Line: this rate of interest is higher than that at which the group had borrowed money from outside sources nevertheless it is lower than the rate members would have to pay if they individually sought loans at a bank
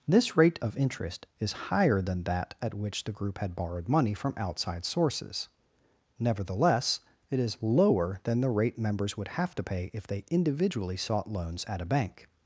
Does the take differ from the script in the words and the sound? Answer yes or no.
no